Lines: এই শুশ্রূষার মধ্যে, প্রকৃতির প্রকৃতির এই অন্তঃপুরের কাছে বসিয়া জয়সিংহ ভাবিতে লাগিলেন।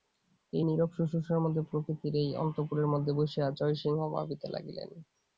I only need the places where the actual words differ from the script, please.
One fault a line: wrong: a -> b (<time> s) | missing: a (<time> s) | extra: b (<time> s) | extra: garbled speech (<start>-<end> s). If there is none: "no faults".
extra: নীরব (0.6 s)
missing: প্রকৃতির (2.1 s)
wrong: কাছে -> মধ্যে (2.9 s)